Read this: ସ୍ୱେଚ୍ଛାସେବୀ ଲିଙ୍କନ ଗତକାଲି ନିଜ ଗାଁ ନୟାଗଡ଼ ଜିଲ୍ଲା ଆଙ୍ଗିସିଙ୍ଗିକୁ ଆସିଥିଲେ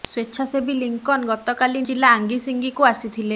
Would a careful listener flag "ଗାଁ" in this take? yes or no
yes